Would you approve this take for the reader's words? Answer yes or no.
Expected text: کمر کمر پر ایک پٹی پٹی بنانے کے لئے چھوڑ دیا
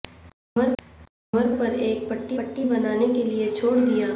yes